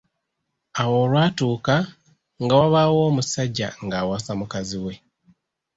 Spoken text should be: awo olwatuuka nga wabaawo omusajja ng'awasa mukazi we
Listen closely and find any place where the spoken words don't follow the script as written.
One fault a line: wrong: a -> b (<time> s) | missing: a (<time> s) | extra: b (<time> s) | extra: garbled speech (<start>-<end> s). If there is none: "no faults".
no faults